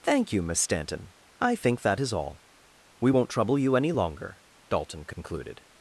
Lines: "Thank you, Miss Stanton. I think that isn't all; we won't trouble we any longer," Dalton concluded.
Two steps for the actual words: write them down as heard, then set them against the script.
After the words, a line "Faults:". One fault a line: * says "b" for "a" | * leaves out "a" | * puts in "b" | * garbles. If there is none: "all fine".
"Thank you, Miss Stanton. I think that is all; we won't trouble you any longer," Dalton concluded.
Faults:
* says "is" for "isn't"
* says "you" for "we"